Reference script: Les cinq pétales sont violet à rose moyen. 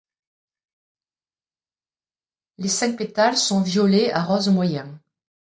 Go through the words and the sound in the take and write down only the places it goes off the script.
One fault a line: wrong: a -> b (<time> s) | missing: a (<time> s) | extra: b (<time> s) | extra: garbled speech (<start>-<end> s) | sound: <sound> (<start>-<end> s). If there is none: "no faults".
no faults